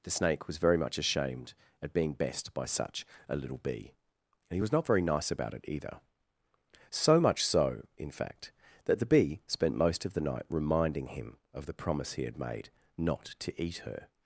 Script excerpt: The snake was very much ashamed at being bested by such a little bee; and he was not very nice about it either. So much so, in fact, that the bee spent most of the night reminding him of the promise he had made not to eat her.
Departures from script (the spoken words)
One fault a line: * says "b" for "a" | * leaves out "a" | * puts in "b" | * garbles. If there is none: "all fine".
* says "best" for "bested"